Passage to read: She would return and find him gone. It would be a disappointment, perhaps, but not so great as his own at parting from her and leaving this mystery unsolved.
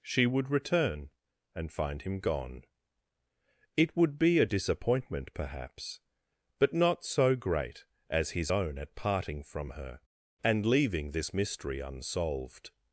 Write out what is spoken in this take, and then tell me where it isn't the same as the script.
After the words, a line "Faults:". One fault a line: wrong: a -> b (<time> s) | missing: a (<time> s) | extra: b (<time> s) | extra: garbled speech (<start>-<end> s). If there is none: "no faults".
She would return and find him gone. It would be a disappointment, perhaps, but not so great as his own at parting from her and leaving this mystery unsolved.
Faults:
no faults